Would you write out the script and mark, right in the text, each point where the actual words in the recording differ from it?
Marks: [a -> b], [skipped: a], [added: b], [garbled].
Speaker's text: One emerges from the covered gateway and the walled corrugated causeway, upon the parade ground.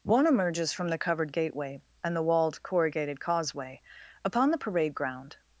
One emerges from the covered gateway and the walled corrugated causeway, upon the parade ground.